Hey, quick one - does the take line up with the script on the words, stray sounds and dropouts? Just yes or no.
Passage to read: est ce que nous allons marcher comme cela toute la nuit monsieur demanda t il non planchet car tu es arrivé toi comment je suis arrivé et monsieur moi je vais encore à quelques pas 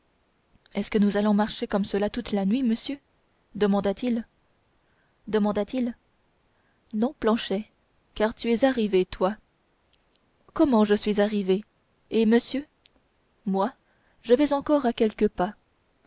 no